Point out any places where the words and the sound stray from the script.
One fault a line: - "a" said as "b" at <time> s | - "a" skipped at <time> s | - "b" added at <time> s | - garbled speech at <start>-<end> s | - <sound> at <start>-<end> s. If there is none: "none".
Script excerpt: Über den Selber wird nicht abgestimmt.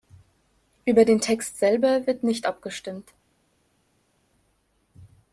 - "Text" added at 1.2 s